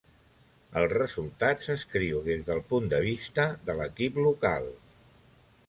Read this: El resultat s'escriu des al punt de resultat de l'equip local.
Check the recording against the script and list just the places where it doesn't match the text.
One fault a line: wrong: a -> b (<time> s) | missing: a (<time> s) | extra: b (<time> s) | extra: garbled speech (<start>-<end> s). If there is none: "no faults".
wrong: al -> del (2.5 s)
wrong: resultat -> vista (3.0 s)